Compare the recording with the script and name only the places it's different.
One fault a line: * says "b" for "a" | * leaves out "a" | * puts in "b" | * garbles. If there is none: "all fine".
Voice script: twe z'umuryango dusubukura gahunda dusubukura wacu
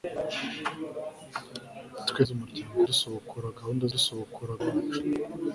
all fine